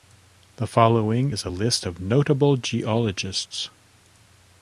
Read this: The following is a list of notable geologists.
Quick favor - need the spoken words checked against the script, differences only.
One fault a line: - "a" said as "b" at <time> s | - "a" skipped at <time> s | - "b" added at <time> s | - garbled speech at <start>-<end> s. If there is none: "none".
none